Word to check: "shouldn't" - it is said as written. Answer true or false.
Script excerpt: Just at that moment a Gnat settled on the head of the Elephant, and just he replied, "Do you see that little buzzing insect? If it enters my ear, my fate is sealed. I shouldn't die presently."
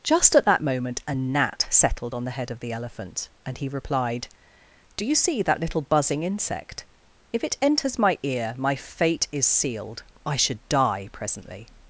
false